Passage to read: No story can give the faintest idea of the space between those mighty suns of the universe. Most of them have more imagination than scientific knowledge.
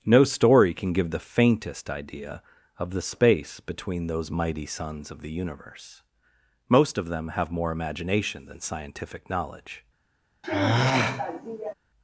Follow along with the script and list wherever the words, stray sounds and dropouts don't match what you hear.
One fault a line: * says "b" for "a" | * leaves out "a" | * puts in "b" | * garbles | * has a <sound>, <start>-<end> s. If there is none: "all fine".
* has a sigh, 10.4-11.7 s